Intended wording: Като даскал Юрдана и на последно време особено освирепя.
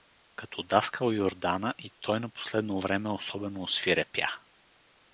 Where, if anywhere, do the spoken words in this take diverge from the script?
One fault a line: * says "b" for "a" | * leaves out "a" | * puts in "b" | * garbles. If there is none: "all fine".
* puts in "той"